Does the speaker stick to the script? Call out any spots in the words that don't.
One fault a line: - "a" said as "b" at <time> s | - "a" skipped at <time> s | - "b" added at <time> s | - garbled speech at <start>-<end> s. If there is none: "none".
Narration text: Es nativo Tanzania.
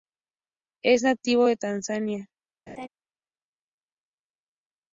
- "de" added at 1.4 s